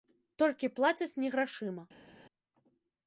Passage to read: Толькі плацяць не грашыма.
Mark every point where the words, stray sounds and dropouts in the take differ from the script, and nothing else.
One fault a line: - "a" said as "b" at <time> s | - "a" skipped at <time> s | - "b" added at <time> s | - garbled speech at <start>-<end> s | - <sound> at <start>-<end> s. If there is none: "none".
none